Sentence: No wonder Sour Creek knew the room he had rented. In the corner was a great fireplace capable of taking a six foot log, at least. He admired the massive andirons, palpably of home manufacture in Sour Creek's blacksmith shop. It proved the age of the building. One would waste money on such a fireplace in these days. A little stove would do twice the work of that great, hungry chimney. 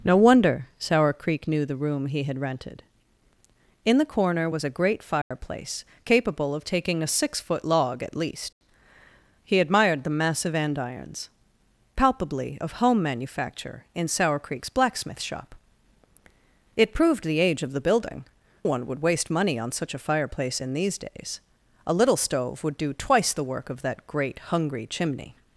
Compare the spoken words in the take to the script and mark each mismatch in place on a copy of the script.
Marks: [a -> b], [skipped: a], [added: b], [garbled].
No wonder Sour Creek knew the room he had rented. In the corner was a great fireplace capable of taking a six foot log, at least. He admired the massive andirons, palpably of home manufacture in Sour Creek's blacksmith shop. It proved the age of the building. One would waste money on such a fireplace in these days. A little stove would do twice the work of that great, hungry chimney.